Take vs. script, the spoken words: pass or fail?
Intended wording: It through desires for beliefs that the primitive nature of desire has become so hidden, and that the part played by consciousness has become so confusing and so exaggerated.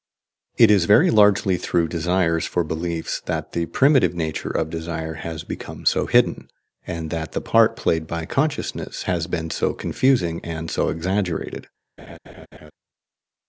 fail